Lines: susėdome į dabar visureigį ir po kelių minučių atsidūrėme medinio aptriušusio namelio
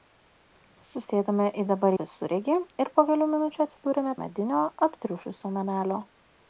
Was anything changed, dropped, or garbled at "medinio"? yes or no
no